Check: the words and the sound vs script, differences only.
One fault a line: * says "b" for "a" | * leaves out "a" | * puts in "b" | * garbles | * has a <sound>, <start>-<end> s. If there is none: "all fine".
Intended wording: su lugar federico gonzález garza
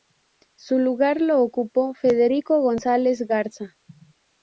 * puts in "lo ocupó"